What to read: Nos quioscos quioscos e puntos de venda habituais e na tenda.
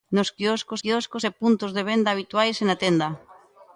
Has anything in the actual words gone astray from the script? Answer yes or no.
no